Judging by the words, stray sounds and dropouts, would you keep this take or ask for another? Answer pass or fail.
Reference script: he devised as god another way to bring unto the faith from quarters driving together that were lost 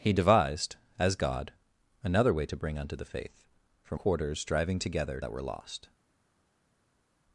pass